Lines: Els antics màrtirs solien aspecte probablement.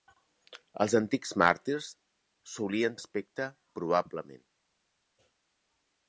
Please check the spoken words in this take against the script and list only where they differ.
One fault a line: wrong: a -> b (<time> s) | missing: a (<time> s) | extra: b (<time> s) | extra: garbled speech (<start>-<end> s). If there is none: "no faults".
no faults